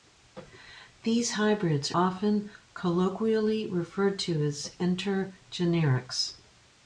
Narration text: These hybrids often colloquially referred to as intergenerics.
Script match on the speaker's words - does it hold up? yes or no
yes